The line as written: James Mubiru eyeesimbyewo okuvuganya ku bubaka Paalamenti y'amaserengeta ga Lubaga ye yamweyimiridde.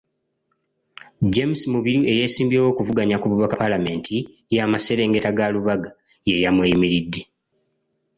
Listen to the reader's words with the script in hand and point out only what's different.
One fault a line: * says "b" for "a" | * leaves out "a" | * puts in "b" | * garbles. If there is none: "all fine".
all fine